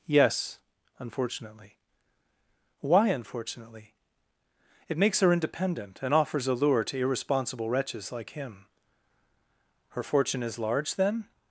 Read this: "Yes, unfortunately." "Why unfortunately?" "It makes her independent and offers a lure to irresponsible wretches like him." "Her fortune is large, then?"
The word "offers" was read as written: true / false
true